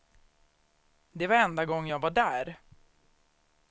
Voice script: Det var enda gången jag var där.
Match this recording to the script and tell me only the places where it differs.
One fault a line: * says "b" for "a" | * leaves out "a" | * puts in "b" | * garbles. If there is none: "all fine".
all fine